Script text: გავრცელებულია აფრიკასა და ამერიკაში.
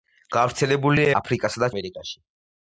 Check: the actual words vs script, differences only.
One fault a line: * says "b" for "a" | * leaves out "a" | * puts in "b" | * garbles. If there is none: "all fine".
all fine